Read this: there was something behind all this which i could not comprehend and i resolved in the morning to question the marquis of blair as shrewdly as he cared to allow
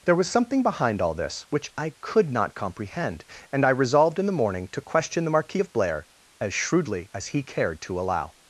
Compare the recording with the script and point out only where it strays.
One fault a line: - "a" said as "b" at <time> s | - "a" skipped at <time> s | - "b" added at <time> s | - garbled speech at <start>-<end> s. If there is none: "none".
none